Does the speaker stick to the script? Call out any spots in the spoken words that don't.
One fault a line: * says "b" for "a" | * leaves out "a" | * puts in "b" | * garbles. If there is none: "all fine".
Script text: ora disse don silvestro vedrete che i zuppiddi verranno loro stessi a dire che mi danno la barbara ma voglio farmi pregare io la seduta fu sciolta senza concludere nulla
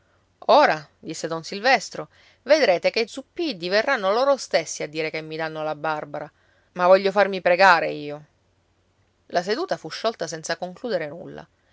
all fine